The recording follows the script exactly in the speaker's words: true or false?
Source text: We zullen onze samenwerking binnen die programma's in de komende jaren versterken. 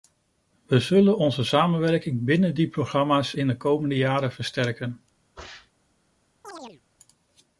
true